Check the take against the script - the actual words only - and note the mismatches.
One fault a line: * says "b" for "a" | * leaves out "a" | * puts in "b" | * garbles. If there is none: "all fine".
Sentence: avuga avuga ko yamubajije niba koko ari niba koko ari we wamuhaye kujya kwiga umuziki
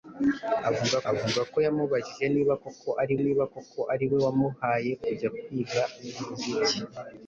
all fine